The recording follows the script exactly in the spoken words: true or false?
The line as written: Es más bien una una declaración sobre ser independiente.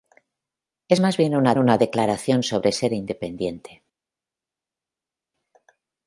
true